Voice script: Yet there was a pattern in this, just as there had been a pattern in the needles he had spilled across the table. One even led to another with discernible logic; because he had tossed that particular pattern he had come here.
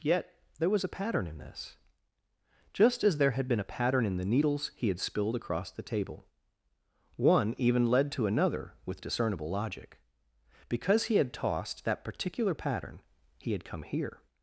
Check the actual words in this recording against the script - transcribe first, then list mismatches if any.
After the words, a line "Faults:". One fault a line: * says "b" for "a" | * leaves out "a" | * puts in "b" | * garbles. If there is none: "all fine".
Yet there was a pattern in this, just as there had been a pattern in the needles he had spilled across the table. One even led to another with discernible logic; because he had tossed that particular pattern he had come here.
Faults:
all fine